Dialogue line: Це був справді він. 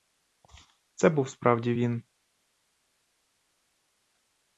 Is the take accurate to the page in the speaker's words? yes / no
yes